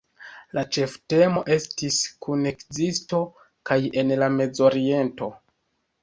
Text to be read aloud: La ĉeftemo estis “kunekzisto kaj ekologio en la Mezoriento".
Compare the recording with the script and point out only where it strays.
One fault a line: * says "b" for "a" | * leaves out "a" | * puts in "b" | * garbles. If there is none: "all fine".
* leaves out "ekologio"